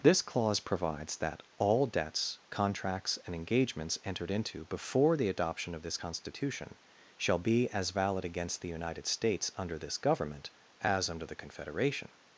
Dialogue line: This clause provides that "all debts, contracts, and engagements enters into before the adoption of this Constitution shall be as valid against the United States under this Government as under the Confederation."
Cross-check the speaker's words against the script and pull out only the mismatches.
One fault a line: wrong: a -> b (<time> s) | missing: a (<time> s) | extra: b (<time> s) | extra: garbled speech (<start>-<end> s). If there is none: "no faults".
wrong: enters -> entered (4.0 s)